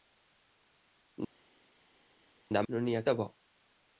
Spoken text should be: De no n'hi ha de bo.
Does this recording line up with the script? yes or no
yes